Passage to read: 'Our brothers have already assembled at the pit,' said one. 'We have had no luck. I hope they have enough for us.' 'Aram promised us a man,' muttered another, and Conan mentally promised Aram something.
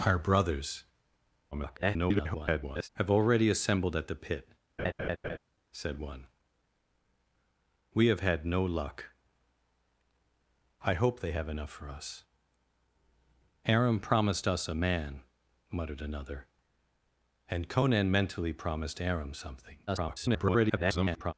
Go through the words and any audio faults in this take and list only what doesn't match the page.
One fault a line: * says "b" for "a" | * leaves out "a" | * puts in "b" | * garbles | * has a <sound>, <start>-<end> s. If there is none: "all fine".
* garbles
* has a laugh, 4.8-5.4 s
* garbles